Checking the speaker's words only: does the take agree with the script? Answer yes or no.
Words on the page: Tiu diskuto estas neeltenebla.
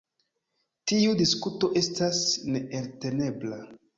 yes